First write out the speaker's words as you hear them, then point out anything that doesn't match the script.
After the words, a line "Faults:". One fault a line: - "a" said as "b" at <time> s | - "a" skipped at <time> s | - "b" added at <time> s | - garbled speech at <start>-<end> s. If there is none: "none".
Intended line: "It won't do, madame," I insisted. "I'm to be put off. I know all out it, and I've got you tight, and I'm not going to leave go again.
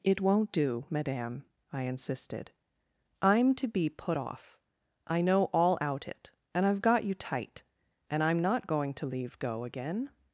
"It won't do, madame," I insisted. "I'm to be put off. I know all out it, and I've got you tight, and I'm not going to leave go again.
Faults:
none